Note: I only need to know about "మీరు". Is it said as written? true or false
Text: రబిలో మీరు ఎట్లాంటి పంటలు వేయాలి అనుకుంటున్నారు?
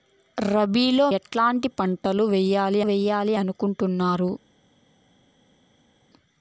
false